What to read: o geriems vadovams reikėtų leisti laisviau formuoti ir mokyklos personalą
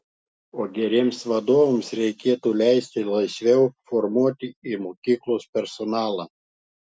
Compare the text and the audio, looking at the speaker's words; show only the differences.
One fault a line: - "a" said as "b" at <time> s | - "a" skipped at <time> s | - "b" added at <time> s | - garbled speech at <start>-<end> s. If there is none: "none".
none